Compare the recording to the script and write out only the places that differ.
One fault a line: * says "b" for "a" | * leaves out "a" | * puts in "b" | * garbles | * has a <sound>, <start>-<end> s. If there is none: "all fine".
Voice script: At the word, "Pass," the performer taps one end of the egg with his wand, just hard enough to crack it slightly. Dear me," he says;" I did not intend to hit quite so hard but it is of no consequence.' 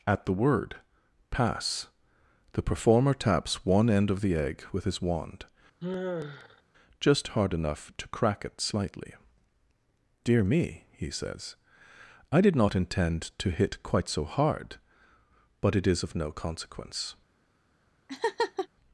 * has a sigh, 5.8-6.6 s
* has a laugh, 18.1-18.7 s